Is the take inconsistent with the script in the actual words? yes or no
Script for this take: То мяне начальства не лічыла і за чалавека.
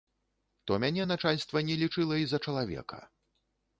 no